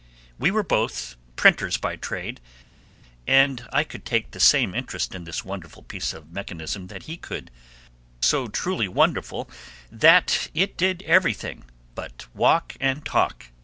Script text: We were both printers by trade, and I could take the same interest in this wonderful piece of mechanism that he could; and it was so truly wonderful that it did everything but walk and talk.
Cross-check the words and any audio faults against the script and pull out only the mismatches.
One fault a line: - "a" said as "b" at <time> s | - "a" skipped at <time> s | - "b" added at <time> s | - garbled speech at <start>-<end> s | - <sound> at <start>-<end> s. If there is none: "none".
- "and it was" skipped at 7.5 s